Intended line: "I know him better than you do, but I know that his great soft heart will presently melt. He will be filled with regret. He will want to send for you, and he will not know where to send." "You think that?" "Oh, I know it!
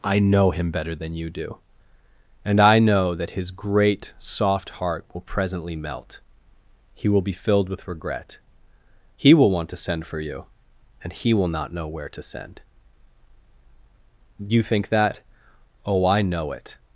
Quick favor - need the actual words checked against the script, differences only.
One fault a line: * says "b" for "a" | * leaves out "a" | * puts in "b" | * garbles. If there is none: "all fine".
* says "and" for "but"